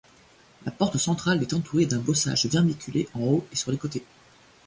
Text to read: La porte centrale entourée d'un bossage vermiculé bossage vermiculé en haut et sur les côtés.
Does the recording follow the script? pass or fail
fail